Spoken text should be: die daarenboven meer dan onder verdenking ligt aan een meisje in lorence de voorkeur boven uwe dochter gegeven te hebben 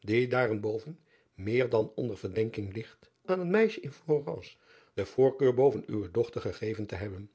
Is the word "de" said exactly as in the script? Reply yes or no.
yes